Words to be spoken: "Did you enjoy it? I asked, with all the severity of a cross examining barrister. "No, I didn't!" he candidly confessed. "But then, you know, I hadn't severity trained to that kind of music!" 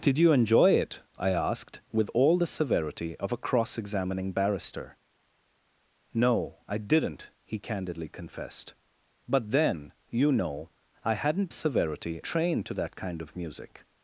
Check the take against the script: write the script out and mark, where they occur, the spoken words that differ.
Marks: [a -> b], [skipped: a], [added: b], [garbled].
"Did you enjoy it? I asked, with all the severity of a cross examining barrister. "No, I didn't!" he candidly confessed. "But then, you know, I hadn't severity trained to that kind of music!"